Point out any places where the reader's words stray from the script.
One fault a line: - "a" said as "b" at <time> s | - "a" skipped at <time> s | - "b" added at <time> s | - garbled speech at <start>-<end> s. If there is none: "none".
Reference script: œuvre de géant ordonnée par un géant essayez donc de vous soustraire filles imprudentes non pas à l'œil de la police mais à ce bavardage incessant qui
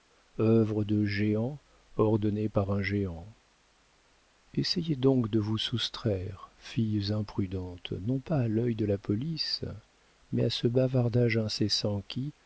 none